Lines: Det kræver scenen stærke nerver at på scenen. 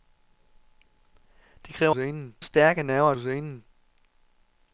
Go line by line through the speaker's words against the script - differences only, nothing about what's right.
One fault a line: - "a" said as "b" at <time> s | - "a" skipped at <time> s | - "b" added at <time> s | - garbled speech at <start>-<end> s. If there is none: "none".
none